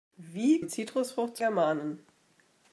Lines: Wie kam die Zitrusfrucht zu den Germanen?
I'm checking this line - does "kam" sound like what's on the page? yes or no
no